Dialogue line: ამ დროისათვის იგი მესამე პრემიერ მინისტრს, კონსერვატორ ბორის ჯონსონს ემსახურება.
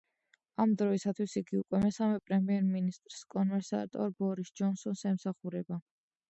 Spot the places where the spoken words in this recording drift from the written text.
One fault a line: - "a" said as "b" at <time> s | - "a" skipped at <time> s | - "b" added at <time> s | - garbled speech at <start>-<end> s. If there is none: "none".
- "უკვე" added at 1.6 s